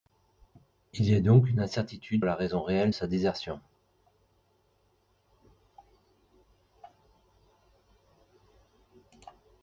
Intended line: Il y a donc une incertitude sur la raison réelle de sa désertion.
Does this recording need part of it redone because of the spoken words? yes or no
yes